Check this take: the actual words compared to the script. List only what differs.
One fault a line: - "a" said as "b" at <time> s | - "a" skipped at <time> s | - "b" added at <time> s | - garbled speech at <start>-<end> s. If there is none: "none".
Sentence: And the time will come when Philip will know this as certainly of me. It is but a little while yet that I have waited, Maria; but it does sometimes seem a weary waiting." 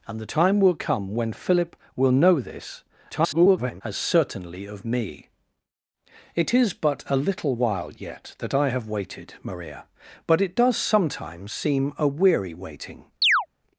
- garbled speech at 3.1-3.8 s